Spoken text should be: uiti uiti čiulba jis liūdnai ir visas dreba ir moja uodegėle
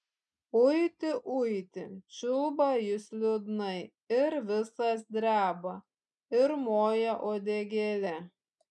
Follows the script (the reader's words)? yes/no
yes